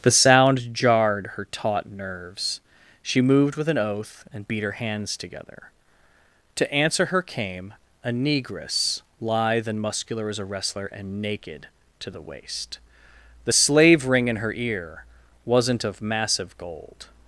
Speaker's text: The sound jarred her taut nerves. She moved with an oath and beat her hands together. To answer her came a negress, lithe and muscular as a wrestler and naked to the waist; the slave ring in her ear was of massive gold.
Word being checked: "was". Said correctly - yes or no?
no